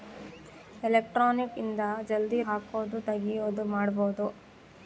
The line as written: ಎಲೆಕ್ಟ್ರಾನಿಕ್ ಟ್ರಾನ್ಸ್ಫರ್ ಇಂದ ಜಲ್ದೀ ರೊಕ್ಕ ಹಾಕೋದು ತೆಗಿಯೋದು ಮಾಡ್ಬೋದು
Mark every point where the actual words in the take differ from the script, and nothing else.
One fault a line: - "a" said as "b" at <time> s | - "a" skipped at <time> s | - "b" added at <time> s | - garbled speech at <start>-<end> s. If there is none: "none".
- "ಟ್ರಾನ್ಸ್ಫರ್" skipped at 1.5 s
- "ರೊಕ್ಕ" skipped at 2.4 s